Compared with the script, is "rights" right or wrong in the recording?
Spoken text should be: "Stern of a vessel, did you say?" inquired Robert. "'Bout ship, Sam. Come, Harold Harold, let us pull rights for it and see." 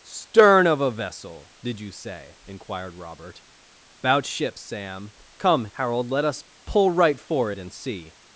wrong